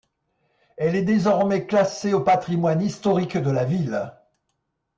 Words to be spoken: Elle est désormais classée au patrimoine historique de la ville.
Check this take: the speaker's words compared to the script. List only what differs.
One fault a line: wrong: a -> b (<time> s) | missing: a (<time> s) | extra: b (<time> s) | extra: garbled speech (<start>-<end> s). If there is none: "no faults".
no faults